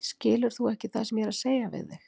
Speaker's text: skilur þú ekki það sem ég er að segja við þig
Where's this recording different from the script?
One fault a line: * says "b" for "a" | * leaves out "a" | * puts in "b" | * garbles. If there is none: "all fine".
all fine